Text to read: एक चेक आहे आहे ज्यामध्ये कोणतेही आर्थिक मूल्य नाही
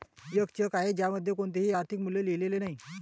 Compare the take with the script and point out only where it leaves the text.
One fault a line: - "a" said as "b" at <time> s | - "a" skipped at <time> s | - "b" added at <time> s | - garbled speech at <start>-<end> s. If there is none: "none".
- "आहे" skipped at 0.9 s
- "लिहिलेले" added at 2.2 s